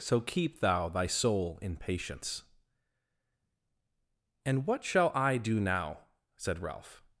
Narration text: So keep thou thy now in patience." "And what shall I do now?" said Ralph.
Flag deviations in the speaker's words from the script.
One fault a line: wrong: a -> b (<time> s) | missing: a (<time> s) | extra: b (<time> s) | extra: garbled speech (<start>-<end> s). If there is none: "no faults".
wrong: now -> soul (1.1 s)